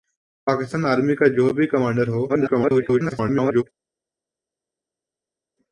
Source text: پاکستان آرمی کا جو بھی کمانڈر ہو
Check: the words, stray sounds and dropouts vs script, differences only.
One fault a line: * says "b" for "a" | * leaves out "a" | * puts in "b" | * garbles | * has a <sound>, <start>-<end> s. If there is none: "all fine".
* garbles